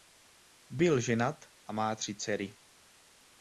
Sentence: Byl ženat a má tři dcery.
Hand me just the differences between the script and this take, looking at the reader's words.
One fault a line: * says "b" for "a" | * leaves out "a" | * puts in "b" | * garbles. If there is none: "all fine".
all fine